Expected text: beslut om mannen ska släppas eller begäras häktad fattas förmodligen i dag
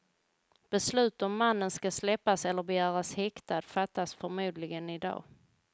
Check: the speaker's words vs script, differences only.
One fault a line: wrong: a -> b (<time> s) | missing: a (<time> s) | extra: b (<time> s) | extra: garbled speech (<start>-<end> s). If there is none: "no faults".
no faults